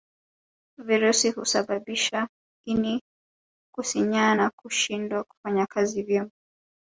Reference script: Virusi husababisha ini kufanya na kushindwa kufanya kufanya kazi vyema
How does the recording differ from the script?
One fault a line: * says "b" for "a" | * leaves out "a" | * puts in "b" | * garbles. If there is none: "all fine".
* says "kusinyaa" for "kufanya"
* leaves out "kufanya"